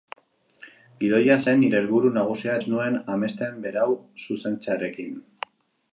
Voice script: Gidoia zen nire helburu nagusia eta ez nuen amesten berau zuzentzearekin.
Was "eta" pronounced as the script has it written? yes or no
no